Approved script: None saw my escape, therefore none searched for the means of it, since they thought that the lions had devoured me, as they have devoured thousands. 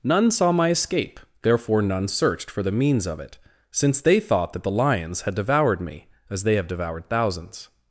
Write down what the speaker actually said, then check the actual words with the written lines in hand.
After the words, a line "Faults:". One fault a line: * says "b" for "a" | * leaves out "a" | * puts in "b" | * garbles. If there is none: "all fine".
None saw my escape, therefore none searched for the means of it, since they thought that the lions had devoured me, as they have devoured thousands.
Faults:
all fine